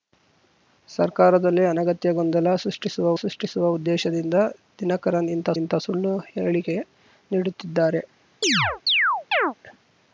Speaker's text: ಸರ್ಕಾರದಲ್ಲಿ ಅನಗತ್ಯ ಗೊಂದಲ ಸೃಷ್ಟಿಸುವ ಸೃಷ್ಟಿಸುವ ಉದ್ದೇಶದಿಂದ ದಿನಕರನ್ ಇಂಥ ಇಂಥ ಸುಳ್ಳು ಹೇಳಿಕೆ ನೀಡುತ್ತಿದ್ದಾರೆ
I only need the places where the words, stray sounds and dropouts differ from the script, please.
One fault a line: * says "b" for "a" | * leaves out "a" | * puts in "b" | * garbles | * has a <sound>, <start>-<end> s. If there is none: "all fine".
* has a chirp, 8.4-9.5 s